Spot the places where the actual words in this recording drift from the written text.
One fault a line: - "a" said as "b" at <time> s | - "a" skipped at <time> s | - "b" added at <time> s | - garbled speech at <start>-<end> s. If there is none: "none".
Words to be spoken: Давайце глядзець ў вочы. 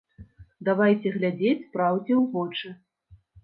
- "праўдзе" added at 1.8 s